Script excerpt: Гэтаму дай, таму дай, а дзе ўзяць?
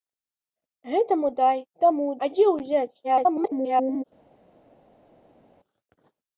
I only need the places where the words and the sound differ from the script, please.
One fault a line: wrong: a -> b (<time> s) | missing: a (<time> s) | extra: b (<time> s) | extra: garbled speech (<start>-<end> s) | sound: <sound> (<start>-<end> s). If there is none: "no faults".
missing: дай (2.1 s)
extra: garbled speech (3.0-4.0 s)